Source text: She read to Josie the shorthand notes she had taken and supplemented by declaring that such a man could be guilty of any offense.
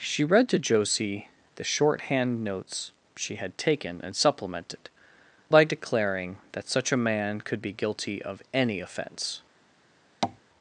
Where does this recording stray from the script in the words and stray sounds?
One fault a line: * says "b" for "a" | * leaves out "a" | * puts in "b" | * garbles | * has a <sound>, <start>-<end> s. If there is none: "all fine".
* has a tap, 10.2-10.4 s